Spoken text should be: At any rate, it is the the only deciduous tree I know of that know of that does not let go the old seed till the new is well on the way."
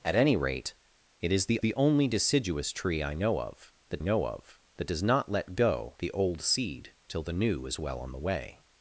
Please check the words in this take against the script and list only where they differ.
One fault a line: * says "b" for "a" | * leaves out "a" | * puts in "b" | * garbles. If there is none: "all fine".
all fine